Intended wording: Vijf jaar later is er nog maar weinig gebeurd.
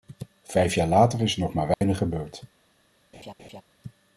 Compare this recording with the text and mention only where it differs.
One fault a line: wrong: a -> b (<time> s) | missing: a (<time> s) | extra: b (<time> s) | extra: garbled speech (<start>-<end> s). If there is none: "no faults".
no faults